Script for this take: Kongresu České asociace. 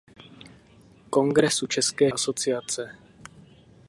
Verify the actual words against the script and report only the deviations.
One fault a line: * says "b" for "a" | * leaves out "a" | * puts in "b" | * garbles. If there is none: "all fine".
all fine